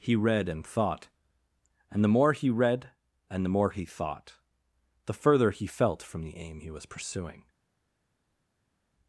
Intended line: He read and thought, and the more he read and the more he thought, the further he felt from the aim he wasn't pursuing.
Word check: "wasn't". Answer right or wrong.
wrong